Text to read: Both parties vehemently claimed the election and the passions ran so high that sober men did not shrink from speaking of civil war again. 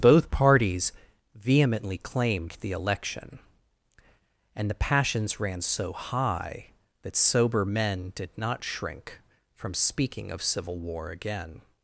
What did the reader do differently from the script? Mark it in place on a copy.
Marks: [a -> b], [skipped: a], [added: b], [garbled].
Both parties vehemently claimed the election and the passions ran so high that sober men did not shrink from speaking of civil war again.